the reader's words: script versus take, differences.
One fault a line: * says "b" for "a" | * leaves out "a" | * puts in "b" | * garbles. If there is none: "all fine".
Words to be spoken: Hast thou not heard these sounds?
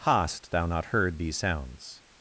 all fine